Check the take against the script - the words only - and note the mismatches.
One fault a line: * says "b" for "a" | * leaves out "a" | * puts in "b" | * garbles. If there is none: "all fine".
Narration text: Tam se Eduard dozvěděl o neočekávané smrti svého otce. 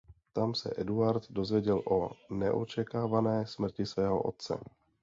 all fine